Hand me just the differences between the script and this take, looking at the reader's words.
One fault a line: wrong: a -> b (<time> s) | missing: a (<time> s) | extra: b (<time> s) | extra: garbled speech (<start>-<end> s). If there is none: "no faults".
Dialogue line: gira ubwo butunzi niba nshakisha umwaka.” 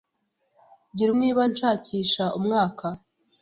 missing: ubwo butunzi (1.1 s)